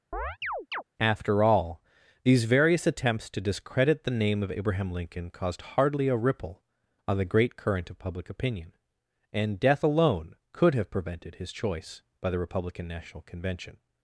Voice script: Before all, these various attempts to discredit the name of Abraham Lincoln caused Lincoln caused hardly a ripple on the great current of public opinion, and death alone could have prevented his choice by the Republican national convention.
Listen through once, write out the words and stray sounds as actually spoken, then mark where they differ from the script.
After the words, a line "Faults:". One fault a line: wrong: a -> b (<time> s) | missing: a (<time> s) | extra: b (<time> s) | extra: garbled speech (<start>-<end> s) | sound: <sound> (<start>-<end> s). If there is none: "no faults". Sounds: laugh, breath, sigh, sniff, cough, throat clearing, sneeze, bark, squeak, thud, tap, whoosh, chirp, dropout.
After all, these various attempts to discredit the name of Abraham Lincoln caused hardly a ripple on the great current of public opinion, and death alone could have prevented his choice by the Republican national convention.
Faults:
sound: chirp (0.1-0.8 s)
wrong: Before -> After (1.0 s)
missing: Lincoln caused (5.6 s)